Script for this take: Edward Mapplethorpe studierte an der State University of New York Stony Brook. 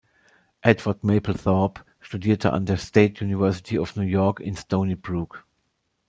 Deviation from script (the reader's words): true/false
true